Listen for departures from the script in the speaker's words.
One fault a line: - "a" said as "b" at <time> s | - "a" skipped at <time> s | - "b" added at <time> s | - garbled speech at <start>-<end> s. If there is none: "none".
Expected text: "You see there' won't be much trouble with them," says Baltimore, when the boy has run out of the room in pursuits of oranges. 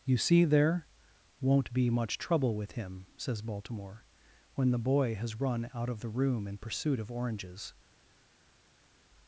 - "them" said as "him" at 2.7 s
- "pursuits" said as "pursuit" at 6.6 s